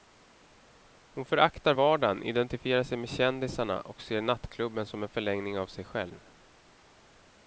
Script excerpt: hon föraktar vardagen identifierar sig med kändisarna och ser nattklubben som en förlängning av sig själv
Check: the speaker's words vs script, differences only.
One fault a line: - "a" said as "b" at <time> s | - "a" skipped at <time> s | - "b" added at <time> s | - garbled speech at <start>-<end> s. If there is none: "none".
none